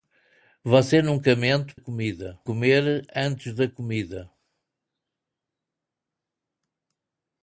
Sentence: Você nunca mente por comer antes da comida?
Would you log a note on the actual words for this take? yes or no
yes